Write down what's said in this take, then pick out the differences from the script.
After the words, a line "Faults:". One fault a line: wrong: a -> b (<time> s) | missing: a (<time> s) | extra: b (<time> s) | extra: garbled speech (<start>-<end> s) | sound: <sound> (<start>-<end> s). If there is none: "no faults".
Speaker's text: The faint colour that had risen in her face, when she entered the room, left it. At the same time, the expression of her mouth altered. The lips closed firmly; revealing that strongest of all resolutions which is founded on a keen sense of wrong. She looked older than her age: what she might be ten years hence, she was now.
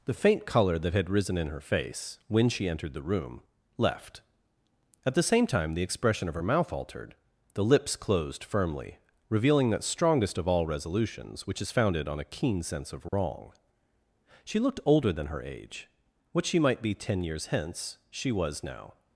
The faint colour that had risen in her face, when she entered the room, left. At the same time, the expression of her mouth altered. The lips closed firmly; revealing that strongest of all resolutions which is founded on a keen sense of wrong. She looked older than her age: what she might be ten years hence, she was now.
Faults:
missing: it (4.2 s)
sound: dropout (13.1-13.1 s)